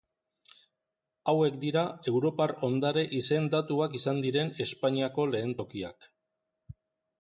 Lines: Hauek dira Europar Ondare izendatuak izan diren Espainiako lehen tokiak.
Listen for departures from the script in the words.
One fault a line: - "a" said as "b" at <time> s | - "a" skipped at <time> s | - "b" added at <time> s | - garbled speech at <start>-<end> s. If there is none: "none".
none